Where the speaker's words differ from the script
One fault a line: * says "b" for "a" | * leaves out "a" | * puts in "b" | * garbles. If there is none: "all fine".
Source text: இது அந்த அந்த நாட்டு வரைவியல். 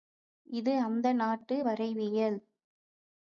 * leaves out "அந்த"